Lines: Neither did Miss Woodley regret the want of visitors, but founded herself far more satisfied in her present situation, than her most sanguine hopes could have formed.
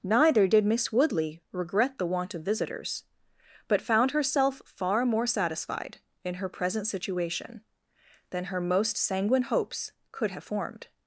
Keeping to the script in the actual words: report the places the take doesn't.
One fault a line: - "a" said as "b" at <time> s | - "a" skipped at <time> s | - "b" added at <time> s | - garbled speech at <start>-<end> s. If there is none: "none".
- "founded" said as "found" at 3.8 s